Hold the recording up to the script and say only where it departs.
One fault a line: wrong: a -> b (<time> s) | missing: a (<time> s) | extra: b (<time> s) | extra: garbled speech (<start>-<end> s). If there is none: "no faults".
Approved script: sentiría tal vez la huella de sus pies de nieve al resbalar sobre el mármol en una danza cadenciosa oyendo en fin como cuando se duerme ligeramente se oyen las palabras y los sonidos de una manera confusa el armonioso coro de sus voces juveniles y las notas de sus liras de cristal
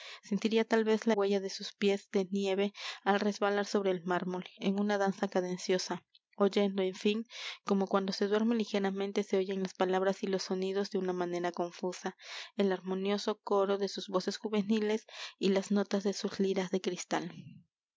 no faults